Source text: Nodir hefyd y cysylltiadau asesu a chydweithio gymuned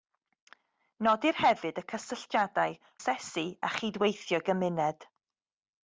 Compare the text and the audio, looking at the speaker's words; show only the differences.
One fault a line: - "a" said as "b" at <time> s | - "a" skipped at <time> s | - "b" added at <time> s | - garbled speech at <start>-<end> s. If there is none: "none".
none